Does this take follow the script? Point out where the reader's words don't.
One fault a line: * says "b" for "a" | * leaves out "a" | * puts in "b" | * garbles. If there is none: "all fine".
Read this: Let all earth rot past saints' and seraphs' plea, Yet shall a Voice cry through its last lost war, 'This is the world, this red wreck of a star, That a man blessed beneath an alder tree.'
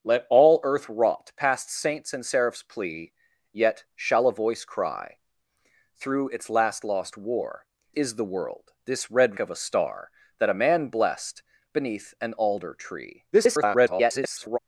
* leaves out "This"
* leaves out "wreck"
* garbles